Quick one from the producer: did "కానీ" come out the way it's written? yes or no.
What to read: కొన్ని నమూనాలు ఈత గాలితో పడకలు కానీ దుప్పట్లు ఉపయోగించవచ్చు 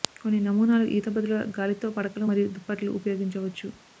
no